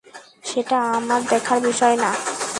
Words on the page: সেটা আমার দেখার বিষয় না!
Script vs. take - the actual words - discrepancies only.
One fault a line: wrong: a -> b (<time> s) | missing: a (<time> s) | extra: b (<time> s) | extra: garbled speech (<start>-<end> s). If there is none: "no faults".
no faults